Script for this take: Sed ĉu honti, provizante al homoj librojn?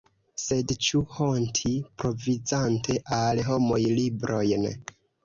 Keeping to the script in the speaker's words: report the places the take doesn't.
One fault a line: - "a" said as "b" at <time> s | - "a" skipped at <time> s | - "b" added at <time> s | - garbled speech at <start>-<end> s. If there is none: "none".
none